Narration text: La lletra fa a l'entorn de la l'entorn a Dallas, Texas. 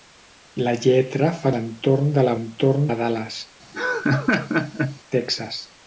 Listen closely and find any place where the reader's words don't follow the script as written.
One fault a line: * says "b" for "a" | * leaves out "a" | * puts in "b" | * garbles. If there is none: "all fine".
all fine